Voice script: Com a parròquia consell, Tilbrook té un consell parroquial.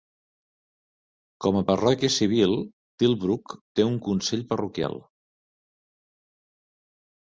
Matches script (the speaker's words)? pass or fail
fail